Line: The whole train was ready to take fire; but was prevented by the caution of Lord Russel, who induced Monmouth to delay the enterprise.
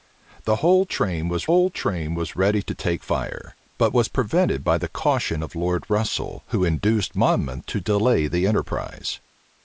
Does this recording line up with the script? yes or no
no